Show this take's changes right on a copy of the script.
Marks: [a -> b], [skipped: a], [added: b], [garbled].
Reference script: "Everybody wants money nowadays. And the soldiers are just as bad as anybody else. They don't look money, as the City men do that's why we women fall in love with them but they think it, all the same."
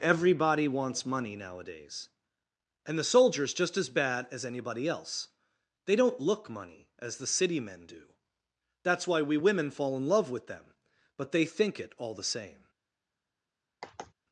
"Everybody wants money nowadays. And the soldiers [skipped: are] just as bad as anybody else. They don't look money, as the City men do that's why we women fall in love with them but they think it, all the same."